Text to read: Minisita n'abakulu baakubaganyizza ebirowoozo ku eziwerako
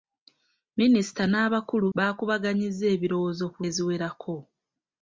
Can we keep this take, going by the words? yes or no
yes